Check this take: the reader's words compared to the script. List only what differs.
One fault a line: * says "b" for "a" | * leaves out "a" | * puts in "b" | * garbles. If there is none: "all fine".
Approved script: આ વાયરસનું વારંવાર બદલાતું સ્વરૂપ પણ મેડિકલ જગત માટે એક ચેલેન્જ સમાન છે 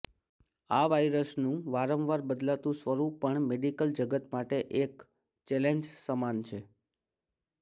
all fine